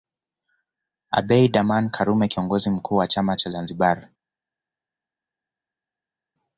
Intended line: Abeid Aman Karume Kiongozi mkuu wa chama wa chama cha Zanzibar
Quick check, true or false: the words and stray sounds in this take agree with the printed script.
false